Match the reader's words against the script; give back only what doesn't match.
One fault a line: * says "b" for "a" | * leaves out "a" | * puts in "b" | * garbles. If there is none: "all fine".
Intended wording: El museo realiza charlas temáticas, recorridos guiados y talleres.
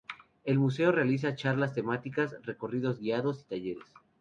all fine